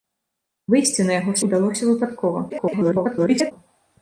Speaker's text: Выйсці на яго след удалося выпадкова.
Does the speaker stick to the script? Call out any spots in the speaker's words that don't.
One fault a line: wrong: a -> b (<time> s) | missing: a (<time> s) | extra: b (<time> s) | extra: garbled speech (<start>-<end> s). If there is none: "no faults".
missing: след (1.4 s)
extra: garbled speech (2.5-3.5 s)